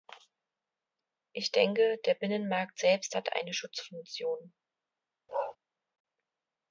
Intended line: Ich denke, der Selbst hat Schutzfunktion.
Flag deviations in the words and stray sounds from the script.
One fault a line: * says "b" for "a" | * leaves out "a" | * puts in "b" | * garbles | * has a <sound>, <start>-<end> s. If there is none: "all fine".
* puts in "Binnenmarkt"
* puts in "eine"
* has a bark, 5.3-5.6 s